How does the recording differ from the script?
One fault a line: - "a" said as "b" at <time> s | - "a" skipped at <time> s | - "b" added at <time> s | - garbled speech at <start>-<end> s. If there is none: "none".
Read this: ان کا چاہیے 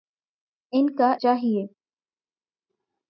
none